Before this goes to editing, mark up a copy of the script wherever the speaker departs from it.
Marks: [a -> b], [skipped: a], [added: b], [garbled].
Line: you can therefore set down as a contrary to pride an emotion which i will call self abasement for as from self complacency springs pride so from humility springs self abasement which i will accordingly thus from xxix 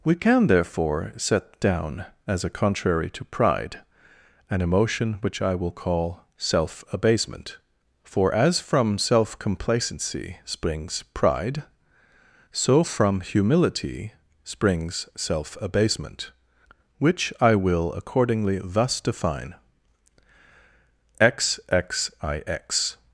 [you -> we] can therefore set down as a contrary to pride an emotion which i will call self abasement for as from self complacency springs pride so from humility springs self abasement which i will accordingly thus [from -> define] xxix